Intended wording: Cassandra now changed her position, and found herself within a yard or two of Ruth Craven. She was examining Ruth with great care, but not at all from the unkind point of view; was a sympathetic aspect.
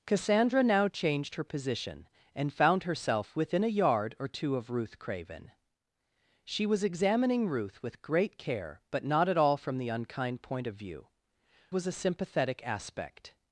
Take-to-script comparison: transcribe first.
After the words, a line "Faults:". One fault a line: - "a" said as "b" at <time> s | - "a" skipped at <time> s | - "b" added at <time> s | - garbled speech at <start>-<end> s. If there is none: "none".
Cassandra now changed her position, and found herself within a yard or two of Ruth Craven. She was examining Ruth with great care, but not at all from the unkind point of view; was a sympathetic aspect.
Faults:
none